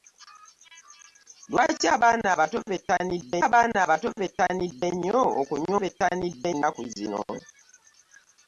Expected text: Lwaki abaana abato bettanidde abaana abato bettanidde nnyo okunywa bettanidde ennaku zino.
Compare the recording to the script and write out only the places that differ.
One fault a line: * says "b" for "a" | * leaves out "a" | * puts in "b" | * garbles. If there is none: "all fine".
all fine